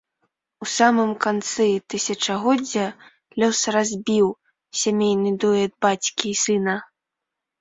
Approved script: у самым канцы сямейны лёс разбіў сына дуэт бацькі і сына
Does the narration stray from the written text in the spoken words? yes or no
yes